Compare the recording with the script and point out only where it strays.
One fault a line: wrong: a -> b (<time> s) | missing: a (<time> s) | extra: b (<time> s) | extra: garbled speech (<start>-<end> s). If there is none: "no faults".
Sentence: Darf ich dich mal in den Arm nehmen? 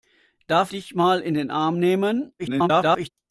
missing: ich (0.7 s)
extra: garbled speech (2.4-3.1 s)